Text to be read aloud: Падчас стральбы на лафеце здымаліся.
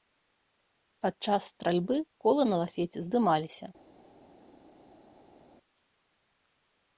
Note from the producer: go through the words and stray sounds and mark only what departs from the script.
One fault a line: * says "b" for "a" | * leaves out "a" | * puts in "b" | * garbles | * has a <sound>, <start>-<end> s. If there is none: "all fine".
* puts in "колы"